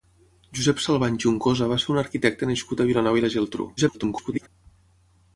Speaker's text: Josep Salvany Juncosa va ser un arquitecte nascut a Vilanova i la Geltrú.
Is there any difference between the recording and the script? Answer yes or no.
yes